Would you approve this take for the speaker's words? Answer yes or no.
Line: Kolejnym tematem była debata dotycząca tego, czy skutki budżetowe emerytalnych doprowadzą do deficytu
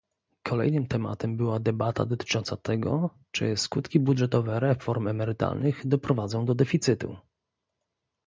no